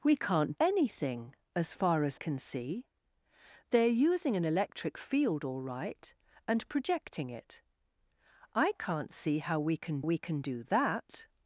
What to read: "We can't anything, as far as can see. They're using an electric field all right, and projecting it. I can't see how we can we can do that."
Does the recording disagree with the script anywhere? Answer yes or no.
no